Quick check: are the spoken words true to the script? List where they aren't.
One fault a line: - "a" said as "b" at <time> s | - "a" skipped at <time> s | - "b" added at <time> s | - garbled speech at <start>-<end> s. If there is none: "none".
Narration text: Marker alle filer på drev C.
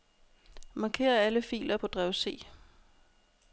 none